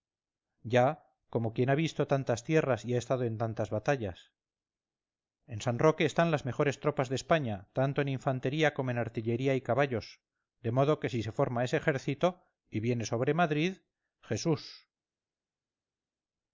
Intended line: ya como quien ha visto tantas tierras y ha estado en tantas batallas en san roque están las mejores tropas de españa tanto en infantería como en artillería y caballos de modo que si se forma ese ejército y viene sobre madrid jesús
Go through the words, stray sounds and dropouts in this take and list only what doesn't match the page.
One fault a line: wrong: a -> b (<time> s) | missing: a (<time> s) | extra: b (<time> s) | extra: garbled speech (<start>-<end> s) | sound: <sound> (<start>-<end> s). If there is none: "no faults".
no faults